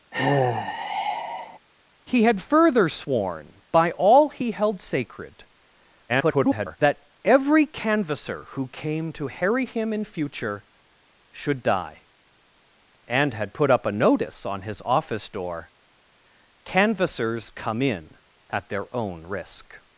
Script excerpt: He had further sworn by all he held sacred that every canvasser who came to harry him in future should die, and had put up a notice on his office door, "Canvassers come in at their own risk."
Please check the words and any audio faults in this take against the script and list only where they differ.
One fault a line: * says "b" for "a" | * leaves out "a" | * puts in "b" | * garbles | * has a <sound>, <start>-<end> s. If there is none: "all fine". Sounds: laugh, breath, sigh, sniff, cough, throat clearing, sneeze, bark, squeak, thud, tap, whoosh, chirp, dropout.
* has a sigh, 0.1-1.6 s
* garbles